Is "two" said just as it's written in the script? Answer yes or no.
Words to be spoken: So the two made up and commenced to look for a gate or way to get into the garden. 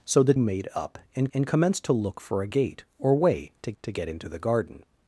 no